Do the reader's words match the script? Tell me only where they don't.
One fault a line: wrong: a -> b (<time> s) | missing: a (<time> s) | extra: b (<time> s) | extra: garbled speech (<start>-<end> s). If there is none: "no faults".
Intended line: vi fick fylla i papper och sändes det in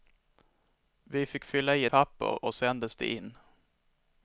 no faults